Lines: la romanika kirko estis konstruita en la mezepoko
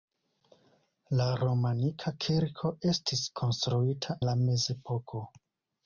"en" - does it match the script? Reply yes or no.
no